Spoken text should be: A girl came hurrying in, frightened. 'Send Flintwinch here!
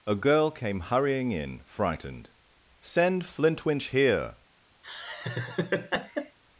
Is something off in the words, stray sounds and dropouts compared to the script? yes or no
yes